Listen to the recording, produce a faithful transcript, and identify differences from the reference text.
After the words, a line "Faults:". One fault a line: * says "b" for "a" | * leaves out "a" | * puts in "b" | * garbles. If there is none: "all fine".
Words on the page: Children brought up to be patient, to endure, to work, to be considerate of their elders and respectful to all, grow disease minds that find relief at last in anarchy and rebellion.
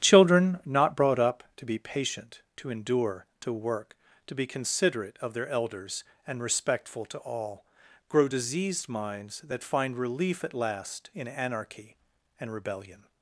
Children not brought up to be patient, to endure, to work, to be considerate of their elders and respectful to all, grow diseased minds that find relief at last in anarchy and rebellion.
Faults:
* puts in "not"
* says "diseased" for "disease"